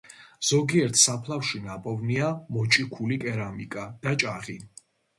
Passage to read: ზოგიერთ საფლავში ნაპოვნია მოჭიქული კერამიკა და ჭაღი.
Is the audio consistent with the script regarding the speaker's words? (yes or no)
yes